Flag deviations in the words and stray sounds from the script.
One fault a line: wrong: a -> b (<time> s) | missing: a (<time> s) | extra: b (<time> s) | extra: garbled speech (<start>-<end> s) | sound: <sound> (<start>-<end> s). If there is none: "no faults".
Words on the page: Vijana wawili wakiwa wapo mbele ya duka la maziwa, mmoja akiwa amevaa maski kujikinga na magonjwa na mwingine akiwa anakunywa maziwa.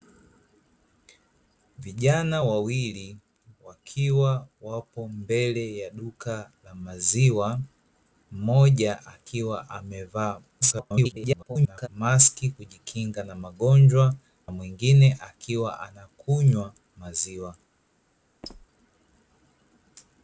extra: garbled speech (10.6-11.9 s)
missing: na (14.2 s)
sound: squeak (18.4-18.7 s)